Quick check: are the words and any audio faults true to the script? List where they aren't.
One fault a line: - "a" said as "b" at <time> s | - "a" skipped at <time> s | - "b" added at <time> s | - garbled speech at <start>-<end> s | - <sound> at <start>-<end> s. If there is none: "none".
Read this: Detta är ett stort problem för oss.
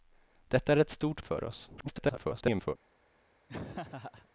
- "problem" skipped at 1.2 s
- garbled speech at 1.8-2.8 s
- laugh at 3.5-4.3 s